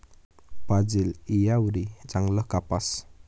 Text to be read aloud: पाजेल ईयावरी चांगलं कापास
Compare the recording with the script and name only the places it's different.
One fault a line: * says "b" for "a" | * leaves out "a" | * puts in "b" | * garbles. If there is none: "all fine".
all fine